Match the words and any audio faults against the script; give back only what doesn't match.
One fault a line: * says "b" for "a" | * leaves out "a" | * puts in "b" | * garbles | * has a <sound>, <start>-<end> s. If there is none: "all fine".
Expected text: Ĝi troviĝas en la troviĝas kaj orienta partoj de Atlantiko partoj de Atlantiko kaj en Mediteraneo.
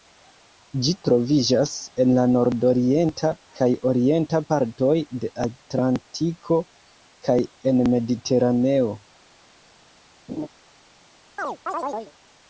* says "nordorienta" for "troviĝas"
* leaves out "partoj de Atlantiko"
* has a laugh, 10.3-10.5 s
* has a chirp, 11.4-12.1 s